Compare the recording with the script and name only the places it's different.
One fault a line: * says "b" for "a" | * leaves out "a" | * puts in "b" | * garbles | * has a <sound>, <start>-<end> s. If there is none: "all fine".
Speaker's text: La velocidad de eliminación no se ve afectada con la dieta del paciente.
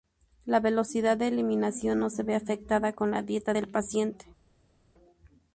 all fine